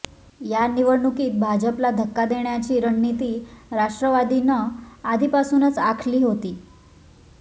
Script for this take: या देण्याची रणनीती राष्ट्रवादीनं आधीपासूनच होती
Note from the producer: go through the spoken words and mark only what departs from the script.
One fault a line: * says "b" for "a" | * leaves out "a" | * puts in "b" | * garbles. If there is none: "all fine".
* puts in "निवडणुकीत भाजपला धक्का"
* puts in "आखली"